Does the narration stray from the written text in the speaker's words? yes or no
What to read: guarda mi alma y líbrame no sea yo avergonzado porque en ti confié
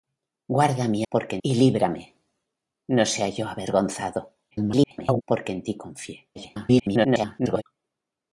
yes